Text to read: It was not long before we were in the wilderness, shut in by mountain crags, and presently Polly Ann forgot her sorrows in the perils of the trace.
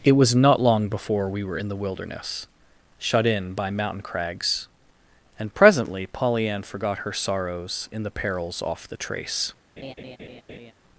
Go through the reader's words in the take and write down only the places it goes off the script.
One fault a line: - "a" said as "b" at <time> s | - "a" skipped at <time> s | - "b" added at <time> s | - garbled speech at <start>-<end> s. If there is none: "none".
- "of" said as "off" at 8.7 s